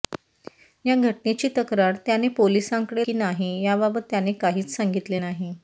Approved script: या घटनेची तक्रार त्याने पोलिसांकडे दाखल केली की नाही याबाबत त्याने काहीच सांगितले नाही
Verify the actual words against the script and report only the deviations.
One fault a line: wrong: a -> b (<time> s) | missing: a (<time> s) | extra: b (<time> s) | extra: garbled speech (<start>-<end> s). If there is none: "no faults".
missing: दाखल केली (3.0 s)